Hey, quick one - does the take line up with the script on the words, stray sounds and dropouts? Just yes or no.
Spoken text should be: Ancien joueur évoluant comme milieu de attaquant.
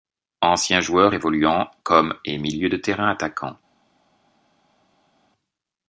no